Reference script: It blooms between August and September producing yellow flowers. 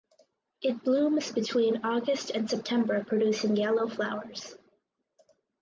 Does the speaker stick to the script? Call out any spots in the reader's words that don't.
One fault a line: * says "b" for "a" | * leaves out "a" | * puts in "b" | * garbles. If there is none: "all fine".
all fine